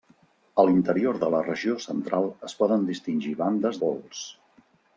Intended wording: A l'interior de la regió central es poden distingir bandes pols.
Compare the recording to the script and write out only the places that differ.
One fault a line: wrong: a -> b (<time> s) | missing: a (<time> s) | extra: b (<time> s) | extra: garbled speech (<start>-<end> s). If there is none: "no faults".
no faults